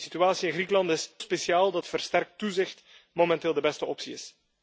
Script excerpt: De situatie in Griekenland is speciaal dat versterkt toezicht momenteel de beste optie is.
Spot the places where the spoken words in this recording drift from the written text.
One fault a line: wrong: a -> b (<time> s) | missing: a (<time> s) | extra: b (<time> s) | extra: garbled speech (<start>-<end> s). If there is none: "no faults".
no faults